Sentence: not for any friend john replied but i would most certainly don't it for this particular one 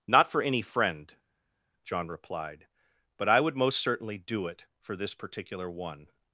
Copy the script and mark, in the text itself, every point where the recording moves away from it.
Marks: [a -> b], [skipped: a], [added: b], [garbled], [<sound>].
not for any friend john replied but i would most certainly [don't -> do] it for this particular one